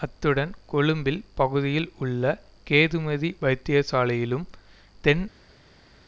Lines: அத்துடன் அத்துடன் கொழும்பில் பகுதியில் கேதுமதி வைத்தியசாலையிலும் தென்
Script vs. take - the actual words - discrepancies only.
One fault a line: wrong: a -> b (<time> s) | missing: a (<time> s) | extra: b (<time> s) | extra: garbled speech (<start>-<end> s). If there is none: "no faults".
missing: அத்துடன் (0.5 s)
extra: உள்ள (2.0 s)